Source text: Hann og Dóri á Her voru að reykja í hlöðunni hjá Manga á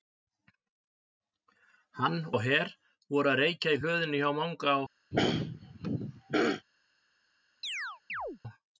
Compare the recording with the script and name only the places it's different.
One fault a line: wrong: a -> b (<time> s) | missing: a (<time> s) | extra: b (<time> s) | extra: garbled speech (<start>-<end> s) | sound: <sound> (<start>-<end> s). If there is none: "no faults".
missing: og Dóri (2.2 s)
sound: throat clearing (5.1-6.7 s)
sound: chirp (7.6-8.4 s)